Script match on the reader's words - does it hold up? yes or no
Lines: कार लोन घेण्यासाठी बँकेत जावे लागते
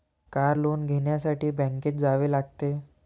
yes